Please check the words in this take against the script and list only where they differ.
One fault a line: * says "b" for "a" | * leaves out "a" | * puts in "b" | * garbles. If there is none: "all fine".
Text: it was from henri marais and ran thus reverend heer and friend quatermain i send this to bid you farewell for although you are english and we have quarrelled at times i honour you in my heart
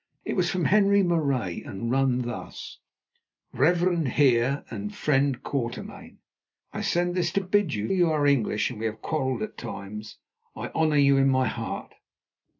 * leaves out "farewell for although"